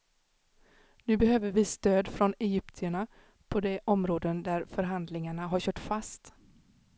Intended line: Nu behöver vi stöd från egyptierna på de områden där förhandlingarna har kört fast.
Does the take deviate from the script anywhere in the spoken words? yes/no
no